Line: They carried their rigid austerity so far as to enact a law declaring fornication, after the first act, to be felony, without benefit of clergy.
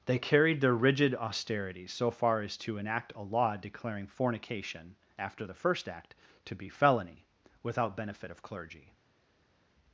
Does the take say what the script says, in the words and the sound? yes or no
yes